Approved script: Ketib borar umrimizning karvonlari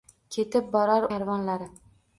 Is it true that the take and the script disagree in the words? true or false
true